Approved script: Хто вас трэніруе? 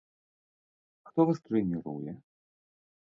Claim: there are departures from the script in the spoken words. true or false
false